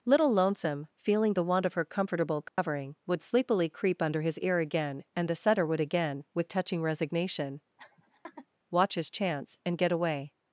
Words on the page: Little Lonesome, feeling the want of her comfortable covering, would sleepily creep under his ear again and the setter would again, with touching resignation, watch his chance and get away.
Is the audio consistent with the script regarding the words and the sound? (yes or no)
no